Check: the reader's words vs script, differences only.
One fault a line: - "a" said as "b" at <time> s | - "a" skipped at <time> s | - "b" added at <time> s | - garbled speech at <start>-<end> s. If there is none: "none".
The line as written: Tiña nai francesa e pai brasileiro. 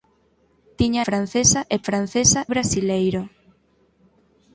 - "nai" skipped at 1.0 s
- "pai" said as "francesa" at 1.9 s